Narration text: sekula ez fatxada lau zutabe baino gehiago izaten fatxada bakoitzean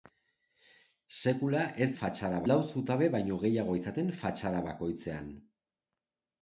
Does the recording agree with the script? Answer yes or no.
yes